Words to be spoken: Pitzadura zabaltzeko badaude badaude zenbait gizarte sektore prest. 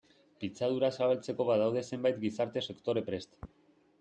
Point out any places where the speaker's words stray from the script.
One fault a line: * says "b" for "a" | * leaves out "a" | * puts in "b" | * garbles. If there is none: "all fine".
* leaves out "badaude"